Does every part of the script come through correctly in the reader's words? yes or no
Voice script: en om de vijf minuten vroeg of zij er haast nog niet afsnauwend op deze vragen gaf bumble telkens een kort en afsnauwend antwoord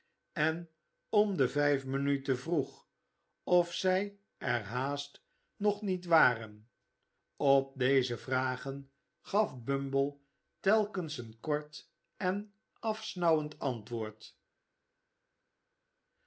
no